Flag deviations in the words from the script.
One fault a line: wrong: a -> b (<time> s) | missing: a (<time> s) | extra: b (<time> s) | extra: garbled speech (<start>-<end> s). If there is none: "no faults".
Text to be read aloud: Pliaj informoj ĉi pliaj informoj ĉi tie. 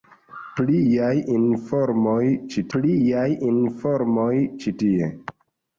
no faults